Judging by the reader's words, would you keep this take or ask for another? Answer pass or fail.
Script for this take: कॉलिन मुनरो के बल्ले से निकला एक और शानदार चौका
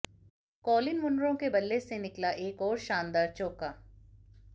pass